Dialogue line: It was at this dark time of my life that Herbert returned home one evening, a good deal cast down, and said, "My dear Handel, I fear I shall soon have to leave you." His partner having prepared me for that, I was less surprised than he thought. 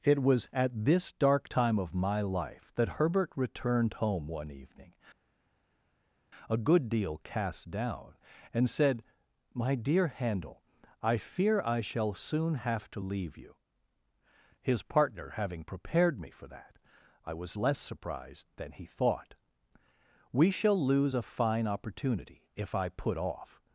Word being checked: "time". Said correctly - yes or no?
yes